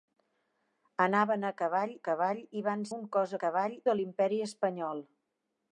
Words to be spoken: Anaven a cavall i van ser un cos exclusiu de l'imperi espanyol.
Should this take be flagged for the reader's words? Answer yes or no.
yes